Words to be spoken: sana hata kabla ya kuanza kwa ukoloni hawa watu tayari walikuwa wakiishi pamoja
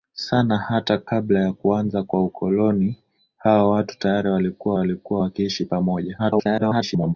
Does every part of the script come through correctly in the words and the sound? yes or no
no